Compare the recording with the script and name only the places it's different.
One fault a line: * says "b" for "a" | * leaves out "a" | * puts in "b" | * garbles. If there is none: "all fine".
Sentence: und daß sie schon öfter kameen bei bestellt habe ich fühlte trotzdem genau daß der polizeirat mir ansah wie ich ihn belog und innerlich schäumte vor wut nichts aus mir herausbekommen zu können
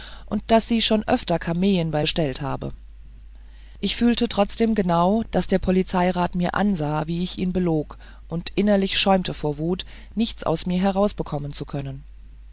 all fine